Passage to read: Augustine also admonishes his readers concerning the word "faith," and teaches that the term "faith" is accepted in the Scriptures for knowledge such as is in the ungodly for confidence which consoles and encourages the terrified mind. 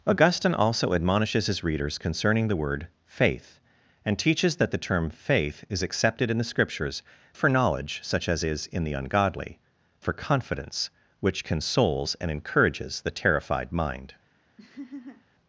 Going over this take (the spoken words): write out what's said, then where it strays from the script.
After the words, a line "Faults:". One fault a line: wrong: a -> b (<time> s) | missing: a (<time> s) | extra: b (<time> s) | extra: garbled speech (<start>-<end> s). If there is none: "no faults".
Augustine also admonishes his readers concerning the word "faith," and teaches that the term "faith" is accepted in the Scriptures for knowledge such as is in the ungodly for confidence which consoles and encourages the terrified mind.
Faults:
no faults